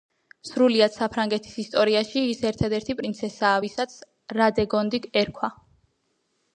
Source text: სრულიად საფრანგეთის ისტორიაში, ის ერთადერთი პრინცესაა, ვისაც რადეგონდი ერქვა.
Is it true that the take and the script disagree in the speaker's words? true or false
false